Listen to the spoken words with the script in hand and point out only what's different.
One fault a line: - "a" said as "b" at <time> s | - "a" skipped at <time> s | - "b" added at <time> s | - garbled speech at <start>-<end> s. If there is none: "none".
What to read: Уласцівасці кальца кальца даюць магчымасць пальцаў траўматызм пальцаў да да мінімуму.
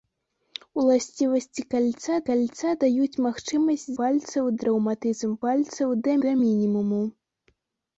none